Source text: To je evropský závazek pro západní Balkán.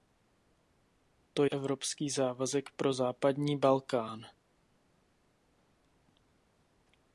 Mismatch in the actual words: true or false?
true